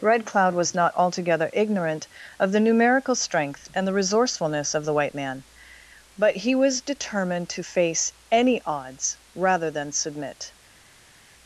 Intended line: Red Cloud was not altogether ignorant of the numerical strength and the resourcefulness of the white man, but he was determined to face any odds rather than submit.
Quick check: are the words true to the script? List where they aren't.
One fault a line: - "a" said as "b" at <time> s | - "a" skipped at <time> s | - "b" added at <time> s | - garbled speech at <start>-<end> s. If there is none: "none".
none